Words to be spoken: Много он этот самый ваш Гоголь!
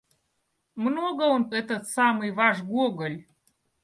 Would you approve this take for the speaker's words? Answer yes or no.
yes